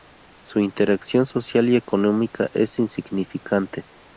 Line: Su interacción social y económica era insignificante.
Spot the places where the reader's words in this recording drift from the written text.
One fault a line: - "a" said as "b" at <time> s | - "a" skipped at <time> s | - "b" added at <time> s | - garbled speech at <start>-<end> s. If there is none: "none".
- "era" said as "es" at 2.5 s